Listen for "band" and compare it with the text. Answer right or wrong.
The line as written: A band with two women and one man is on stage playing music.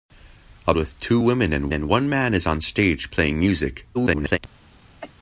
wrong